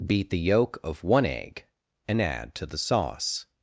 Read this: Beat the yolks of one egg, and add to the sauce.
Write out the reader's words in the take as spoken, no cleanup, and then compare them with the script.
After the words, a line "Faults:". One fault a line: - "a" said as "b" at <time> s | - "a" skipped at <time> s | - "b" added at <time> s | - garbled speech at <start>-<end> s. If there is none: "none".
Beat the yolk of one egg, and add to the sauce.
Faults:
- "yolks" said as "yolk" at 0.4 s